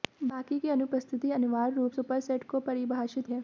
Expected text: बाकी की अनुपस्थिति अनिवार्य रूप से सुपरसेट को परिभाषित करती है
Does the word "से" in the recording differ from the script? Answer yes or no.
yes